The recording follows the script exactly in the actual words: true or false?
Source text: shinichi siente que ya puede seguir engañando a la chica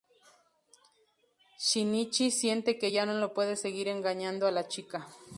false